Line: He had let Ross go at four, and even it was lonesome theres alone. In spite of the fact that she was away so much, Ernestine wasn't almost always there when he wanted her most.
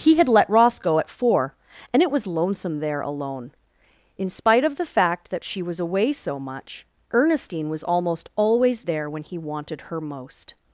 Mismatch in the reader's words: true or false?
true